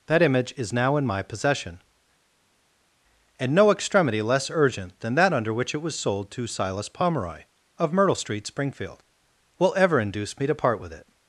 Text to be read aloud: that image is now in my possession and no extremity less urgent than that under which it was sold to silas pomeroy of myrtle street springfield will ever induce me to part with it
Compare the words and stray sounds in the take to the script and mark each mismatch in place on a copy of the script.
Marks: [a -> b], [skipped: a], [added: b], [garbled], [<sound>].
that image is now in my possession and no extremity less urgent than that under which it was sold to silas pomeroy of myrtle street springfield will ever induce me to part with it